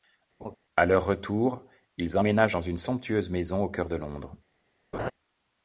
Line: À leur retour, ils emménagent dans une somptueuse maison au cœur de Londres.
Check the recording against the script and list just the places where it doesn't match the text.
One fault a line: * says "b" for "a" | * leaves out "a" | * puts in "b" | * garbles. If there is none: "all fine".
all fine